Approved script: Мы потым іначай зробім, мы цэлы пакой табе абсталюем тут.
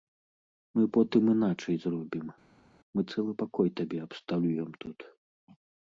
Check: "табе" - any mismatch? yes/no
no